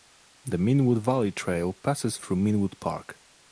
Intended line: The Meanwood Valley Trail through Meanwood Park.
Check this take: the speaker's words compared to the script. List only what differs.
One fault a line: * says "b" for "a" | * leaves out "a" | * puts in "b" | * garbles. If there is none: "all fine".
* puts in "passes"